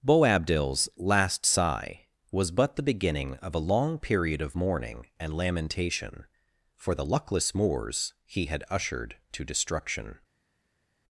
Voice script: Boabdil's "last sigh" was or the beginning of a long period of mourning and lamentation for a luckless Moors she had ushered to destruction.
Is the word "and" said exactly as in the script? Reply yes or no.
yes